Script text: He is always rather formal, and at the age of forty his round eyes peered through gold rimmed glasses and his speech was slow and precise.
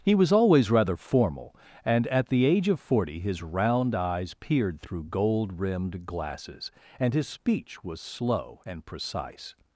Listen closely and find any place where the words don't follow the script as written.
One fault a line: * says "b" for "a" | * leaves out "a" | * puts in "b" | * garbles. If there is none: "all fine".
* says "was" for "is"